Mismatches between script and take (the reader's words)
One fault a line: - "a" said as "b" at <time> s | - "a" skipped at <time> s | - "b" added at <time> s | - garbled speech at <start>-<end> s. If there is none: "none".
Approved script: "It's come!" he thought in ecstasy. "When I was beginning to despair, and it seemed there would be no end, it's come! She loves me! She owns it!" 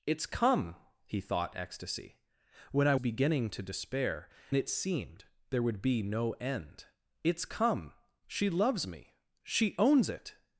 - "in" skipped at 1.6 s
- "was" skipped at 2.9 s
- "and" skipped at 4.3 s